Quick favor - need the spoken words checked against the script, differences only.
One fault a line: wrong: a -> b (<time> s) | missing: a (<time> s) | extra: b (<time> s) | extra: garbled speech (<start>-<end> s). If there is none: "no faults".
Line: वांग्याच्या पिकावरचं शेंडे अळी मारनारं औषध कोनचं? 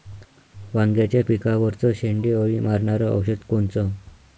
no faults